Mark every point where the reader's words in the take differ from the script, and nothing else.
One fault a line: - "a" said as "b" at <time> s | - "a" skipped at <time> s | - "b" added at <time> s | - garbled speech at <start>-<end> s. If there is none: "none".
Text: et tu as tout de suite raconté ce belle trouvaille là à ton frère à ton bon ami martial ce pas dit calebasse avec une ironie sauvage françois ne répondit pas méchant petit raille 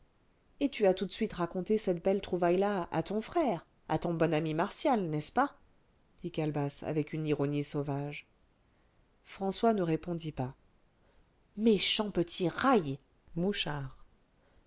- "ce" said as "cette" at 1.8 s
- "n'est" added at 5.1 s